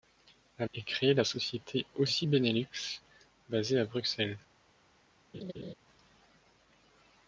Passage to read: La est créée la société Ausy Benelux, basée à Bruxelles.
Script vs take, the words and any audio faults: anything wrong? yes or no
yes